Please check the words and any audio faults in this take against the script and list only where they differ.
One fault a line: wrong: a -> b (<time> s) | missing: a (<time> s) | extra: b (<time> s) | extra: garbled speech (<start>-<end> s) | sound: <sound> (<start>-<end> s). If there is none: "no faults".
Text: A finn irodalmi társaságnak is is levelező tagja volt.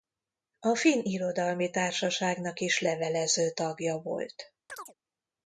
missing: is (2.8 s)
sound: chirp (4.7-4.9 s)